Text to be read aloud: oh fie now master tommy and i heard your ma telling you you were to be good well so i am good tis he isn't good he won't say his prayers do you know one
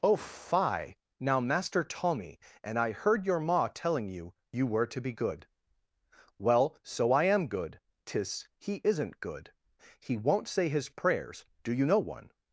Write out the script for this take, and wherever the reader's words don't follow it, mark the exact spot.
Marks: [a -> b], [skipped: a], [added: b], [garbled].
oh fie now master tommy and i heard your ma telling you you were to be good well so i am good tis he isn't good he won't say his prayers do you know one